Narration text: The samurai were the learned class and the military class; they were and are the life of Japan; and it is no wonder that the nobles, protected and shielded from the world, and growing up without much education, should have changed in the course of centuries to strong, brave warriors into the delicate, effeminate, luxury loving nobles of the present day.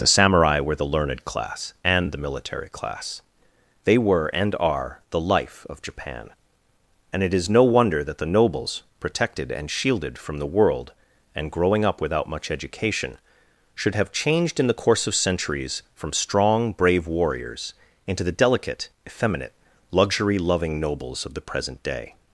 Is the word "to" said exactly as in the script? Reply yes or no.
no